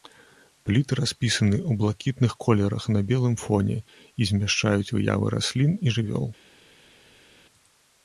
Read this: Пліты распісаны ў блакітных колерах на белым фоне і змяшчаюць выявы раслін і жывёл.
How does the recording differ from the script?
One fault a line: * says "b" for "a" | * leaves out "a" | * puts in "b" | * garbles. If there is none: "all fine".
all fine